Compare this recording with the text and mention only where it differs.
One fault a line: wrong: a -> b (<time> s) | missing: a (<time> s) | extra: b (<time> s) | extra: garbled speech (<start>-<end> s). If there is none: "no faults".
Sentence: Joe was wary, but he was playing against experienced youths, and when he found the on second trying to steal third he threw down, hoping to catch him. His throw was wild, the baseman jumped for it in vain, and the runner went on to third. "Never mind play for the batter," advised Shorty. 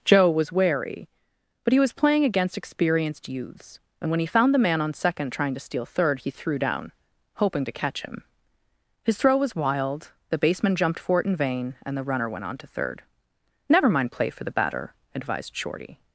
extra: man (4.6 s)